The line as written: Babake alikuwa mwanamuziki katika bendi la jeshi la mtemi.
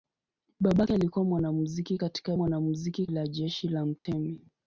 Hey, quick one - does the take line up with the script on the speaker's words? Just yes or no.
no